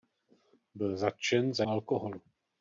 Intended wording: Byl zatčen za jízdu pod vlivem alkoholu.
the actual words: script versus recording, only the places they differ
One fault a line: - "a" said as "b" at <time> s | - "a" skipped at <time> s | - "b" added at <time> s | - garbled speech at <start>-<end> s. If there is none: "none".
- "jízdu pod vlivem" skipped at 1.6 s